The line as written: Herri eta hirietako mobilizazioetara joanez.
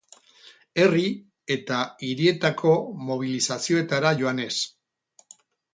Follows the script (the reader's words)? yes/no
yes